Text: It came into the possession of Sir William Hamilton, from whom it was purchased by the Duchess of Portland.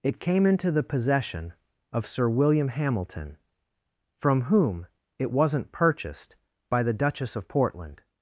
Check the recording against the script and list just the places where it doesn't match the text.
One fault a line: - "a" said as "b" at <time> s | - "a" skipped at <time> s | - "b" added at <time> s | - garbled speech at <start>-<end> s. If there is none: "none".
- "was" said as "wasn't" at 5.3 s